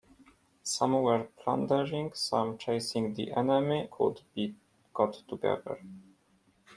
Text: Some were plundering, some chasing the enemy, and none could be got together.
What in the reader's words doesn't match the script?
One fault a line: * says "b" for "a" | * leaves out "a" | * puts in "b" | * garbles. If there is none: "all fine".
* leaves out "and none"